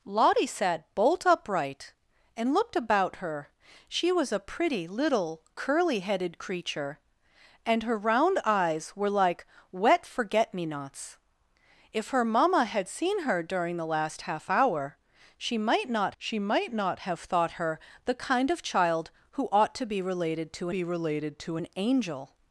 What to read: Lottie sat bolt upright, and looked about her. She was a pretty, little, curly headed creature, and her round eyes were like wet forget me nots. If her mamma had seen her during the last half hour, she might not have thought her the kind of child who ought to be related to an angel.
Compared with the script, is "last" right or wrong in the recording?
right